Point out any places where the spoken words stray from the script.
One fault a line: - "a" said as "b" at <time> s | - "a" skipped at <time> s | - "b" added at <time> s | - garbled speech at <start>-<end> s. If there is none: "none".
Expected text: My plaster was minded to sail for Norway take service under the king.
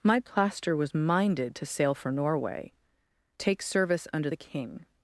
none